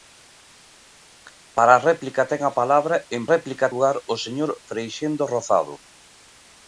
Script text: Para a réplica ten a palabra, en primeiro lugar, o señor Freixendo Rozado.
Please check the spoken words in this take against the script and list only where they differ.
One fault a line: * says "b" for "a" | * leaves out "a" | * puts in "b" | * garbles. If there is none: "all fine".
* says "réplica" for "primeiro"